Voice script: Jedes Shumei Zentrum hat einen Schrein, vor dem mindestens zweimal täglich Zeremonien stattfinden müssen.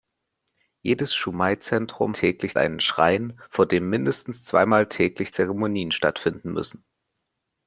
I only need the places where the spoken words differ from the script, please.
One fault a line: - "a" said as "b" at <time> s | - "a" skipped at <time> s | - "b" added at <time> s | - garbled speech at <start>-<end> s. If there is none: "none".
- "hat" said as "täglich" at 2.1 s